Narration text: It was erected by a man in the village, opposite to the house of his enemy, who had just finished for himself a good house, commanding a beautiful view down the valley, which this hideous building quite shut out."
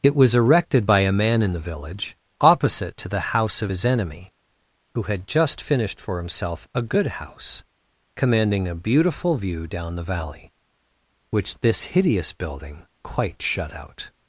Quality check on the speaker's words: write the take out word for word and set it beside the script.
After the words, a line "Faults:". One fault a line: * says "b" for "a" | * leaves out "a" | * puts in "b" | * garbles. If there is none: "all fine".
It was erected by a man in the village, opposite to the house of his enemy, who had just finished for himself a good house, commanding a beautiful view down the valley, which this hideous building quite shut out."
Faults:
all fine